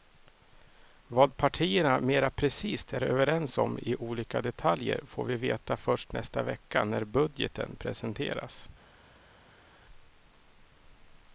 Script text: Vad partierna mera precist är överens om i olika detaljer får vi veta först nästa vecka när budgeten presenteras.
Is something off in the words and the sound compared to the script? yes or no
no